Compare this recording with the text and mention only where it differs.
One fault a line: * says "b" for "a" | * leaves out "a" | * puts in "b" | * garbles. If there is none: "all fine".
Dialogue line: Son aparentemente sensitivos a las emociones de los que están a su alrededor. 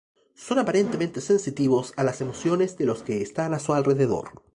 all fine